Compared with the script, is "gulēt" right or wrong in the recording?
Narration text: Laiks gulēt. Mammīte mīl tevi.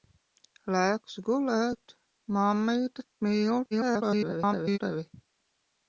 right